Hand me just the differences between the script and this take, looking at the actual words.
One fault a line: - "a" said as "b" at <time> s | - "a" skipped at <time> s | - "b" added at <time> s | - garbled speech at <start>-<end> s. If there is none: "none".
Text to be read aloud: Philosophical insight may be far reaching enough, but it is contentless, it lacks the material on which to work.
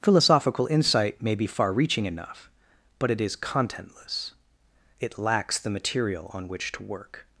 none